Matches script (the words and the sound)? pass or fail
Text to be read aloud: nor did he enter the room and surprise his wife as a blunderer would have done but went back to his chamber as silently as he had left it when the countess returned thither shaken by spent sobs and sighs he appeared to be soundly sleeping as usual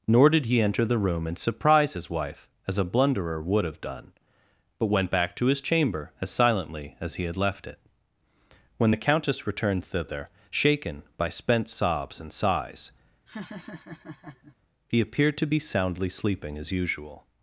fail